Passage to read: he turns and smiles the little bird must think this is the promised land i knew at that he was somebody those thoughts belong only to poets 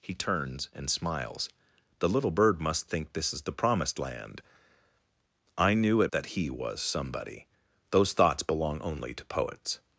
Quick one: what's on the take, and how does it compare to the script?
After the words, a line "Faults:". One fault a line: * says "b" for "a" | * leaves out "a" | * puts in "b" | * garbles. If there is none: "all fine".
he turns and smiles the little bird must think this is the promised land i knew at that he was somebody those thoughts belong only to poets
Faults:
all fine